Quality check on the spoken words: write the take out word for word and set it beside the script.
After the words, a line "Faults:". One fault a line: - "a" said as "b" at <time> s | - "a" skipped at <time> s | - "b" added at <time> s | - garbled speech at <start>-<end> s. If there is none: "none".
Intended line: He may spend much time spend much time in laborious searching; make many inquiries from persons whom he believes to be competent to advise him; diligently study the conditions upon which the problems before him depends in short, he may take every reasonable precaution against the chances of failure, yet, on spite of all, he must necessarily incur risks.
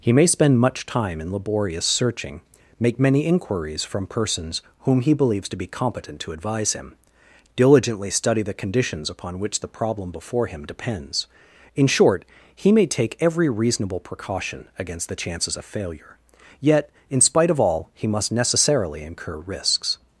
He may spend much time in laborious searching; make many inquiries from persons whom he believes to be competent to advise him; diligently study the conditions upon which the problem before him depends in short, he may take every reasonable precaution against the chances of failure, yet, in spite of all, he must necessarily incur risks.
Faults:
- "spend much time" skipped at 1.2 s
- "problems" said as "problem" at 9.7 s
- "on" said as "in" at 17.1 s